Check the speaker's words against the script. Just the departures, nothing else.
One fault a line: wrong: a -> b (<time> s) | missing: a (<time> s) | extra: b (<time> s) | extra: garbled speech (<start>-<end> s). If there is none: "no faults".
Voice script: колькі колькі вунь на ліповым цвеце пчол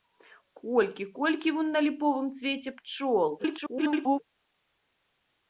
extra: garbled speech (3.4-4.2 s)